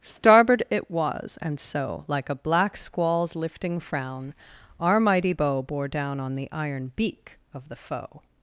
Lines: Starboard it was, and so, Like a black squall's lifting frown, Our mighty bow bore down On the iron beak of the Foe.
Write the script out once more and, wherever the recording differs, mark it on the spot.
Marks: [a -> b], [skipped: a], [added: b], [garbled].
Starboard it was, and so, Like a black squall's lifting frown, Our mighty bow bore down On the iron beak of the Foe.